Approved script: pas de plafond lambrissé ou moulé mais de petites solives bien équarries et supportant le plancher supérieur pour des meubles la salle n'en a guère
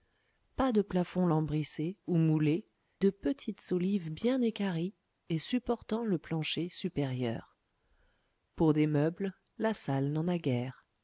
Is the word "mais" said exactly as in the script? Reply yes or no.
no